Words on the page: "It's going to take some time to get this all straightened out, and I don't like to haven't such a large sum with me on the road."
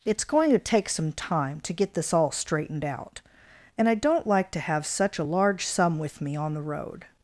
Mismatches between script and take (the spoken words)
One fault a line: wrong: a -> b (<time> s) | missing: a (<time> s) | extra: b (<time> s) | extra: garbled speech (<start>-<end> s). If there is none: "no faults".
wrong: haven't -> have (4.6 s)